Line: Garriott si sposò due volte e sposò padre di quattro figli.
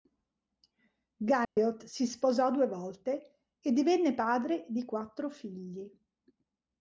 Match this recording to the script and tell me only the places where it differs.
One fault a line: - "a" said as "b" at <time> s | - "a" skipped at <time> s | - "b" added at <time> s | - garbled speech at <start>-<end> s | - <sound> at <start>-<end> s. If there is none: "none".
- dropout at 1.4-1.6 s
- "sposò" said as "divenne" at 3.7 s